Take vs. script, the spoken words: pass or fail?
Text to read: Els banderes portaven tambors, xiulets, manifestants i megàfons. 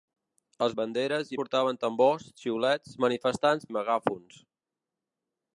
pass